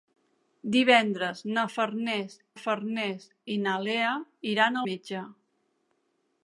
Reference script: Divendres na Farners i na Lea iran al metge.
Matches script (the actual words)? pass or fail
fail